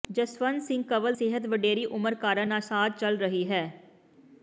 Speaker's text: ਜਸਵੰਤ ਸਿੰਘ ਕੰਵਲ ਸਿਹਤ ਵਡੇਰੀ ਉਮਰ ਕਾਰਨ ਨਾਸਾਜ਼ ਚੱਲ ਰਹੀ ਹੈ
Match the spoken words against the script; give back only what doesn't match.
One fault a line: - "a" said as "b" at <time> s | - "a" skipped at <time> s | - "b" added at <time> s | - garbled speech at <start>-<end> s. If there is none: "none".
none